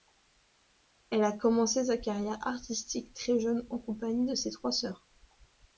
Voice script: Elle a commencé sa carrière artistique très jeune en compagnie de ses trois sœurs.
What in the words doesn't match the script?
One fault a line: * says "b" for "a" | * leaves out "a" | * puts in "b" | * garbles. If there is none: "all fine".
all fine